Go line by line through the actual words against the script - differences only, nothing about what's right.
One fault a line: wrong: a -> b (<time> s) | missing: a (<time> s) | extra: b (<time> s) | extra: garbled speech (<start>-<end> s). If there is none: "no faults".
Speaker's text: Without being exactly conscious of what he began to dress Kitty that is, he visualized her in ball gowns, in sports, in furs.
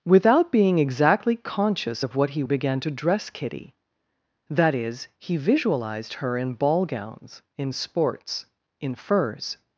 no faults